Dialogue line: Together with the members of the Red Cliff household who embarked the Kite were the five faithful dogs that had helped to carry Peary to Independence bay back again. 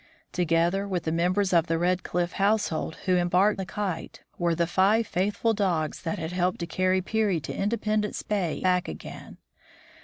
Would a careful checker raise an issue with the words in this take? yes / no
no